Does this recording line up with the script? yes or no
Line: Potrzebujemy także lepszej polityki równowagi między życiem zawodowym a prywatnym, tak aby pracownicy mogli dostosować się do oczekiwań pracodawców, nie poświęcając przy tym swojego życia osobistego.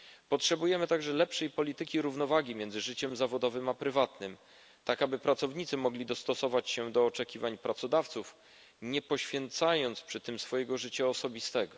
yes